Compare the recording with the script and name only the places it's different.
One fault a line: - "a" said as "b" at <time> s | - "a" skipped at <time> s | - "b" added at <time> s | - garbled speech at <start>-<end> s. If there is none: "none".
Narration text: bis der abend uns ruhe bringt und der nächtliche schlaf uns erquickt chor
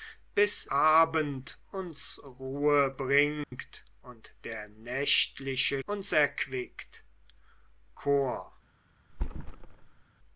- "der" skipped at 0.7 s
- "schlaf" skipped at 5.8 s